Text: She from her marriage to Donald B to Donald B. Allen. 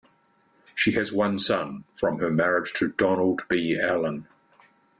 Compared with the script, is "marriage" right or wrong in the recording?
right